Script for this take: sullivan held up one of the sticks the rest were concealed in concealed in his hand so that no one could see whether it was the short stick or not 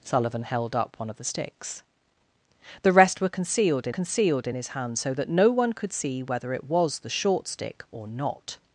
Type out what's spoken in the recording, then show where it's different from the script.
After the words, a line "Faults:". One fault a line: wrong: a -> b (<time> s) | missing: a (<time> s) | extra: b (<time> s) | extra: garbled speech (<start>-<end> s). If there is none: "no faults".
sullivan held up one of the sticks the rest were concealed in concealed in his hand so that no one could see whether it was the short stick or not
Faults:
no faults